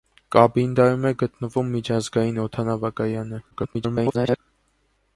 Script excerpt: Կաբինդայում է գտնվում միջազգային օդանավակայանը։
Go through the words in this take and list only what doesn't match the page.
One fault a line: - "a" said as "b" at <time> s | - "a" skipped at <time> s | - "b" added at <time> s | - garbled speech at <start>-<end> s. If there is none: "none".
- garbled speech at 3.5-4.4 s